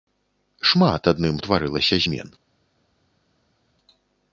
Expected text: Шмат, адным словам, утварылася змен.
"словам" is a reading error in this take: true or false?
true